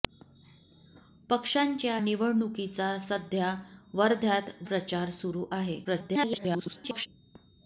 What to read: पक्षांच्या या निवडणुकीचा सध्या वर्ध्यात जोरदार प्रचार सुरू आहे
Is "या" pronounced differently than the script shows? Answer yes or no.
yes